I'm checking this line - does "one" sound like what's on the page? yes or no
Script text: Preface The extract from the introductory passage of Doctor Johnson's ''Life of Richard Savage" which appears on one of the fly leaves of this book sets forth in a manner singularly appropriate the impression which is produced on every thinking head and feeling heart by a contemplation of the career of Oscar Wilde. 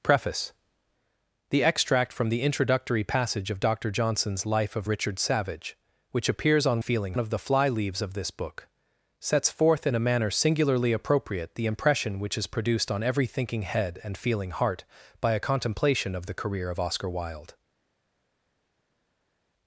no